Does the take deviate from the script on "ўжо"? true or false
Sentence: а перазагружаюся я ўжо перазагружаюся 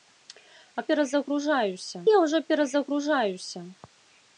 false